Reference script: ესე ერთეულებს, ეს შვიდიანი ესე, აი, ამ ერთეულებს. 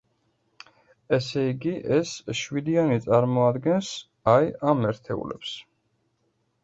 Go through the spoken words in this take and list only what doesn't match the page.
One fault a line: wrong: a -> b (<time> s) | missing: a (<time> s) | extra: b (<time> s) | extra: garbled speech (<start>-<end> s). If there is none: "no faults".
wrong: ერთეულებს -> იგი (1.5 s)
wrong: ესე -> წარმოადგენს (3.1 s)